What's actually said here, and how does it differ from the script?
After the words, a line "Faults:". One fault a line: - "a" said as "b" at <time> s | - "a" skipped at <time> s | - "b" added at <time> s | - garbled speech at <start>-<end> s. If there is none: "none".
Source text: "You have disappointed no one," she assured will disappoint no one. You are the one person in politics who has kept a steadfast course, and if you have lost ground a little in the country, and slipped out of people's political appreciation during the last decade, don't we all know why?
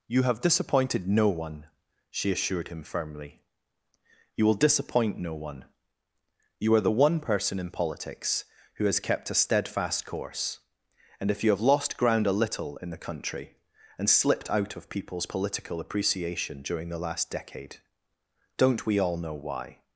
"You have disappointed no one," she assured him firmly. "You will disappoint no one. You are the one person in politics who has kept a steadfast course, and if you have lost ground a little in the country, and slipped out of people's political appreciation during the last decade, don't we all know why?
Faults:
- "him firmly You" added at 2.7 s